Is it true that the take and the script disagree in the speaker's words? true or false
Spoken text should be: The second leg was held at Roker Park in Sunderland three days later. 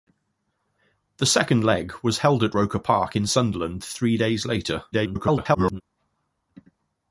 true